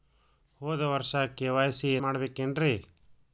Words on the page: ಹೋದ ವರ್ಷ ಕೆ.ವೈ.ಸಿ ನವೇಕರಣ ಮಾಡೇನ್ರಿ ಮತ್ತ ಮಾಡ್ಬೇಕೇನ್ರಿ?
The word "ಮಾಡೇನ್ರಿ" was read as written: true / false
false